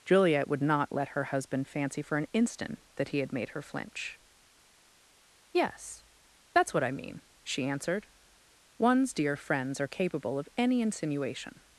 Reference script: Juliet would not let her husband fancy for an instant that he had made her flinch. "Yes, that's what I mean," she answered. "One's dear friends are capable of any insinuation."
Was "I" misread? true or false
false